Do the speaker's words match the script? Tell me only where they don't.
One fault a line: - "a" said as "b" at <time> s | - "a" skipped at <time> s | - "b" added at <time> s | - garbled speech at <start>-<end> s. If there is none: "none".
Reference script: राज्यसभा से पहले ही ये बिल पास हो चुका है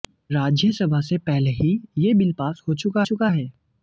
- "चुका" added at 3.0 s